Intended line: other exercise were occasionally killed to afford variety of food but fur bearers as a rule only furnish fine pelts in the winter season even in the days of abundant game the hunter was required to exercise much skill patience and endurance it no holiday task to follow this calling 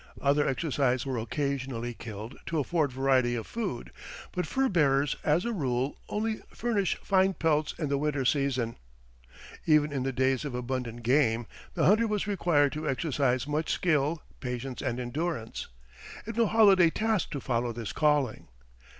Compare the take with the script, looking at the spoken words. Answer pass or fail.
pass